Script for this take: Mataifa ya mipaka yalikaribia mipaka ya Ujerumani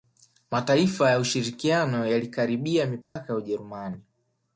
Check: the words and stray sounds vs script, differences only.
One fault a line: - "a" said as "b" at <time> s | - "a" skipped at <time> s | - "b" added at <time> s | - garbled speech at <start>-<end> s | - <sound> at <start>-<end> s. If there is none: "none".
- "mipaka" said as "ushirikiano" at 1.2 s
- dropout at 3.0-3.2 s